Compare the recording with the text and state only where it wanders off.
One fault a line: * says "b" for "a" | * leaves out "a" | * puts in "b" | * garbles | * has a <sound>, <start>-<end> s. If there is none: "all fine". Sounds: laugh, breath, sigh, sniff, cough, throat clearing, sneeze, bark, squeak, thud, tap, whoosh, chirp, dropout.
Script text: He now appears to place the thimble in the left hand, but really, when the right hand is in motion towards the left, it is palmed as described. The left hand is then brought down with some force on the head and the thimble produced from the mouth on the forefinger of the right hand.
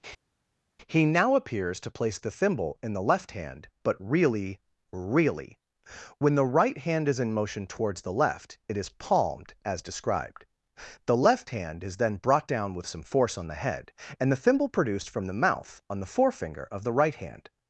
* puts in "really"